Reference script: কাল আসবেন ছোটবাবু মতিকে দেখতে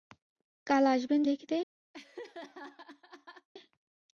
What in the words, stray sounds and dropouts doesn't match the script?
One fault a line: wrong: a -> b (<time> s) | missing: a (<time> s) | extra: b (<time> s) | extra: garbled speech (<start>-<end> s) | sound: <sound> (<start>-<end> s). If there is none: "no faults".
missing: ছোটবাবু মতিকে (1.2 s)
sound: laugh (1.9-3.5 s)